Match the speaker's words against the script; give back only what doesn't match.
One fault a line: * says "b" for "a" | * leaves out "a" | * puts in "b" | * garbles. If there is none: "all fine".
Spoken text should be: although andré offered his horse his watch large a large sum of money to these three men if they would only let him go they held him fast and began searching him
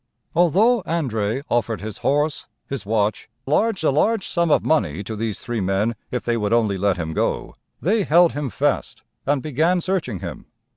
all fine